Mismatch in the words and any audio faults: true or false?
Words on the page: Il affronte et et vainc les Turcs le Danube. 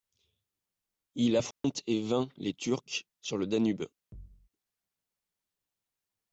true